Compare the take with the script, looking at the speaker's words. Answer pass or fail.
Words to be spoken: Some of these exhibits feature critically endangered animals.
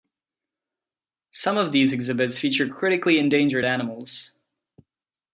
pass